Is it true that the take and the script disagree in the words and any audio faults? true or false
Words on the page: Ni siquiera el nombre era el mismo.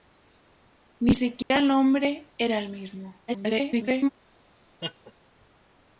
true